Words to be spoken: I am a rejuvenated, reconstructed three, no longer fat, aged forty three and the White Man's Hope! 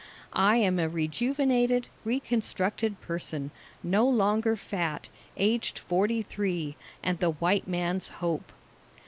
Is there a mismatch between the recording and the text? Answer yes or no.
yes